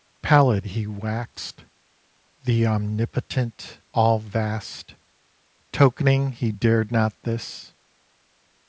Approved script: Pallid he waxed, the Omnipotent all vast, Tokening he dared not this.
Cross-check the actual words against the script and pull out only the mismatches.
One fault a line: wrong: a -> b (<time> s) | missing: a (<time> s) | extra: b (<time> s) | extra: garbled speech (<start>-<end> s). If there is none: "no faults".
no faults